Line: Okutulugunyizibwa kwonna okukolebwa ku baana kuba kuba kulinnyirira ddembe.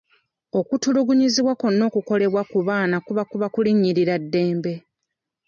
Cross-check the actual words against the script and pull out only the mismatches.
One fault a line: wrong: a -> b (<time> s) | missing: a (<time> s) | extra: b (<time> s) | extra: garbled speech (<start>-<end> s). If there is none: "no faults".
no faults